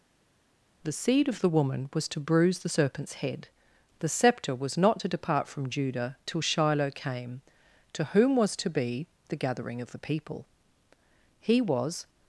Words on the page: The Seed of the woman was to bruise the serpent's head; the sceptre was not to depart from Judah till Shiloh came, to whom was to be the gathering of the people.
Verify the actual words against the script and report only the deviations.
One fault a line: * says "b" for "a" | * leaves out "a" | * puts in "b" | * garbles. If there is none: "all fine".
* puts in "He was"